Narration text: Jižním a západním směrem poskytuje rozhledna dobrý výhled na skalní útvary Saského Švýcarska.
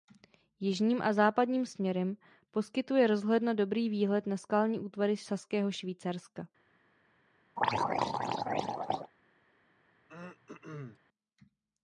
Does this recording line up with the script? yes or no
yes